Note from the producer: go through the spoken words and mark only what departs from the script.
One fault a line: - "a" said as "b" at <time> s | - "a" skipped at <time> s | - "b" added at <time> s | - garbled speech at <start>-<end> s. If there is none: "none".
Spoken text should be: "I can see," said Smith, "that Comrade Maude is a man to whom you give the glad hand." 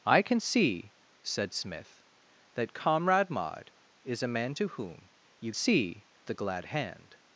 - "give" said as "see" at 5.5 s